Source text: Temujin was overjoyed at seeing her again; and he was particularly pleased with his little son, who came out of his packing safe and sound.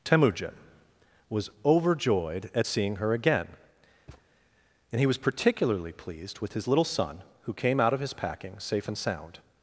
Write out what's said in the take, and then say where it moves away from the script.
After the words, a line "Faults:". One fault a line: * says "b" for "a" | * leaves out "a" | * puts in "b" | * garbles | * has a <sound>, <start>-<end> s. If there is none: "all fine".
Temujin was overjoyed at seeing her again; and he was particularly pleased with his little son, who came out of his packing safe and sound.
Faults:
* has a thud, 4.1-4.3 s